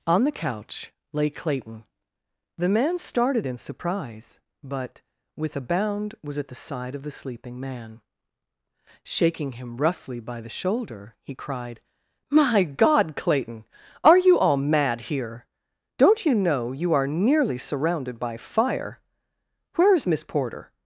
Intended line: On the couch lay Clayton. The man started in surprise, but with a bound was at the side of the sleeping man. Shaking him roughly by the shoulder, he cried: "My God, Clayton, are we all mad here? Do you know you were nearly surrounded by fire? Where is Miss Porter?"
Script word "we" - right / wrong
wrong